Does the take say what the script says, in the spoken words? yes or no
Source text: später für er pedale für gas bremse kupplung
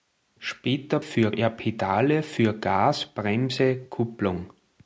yes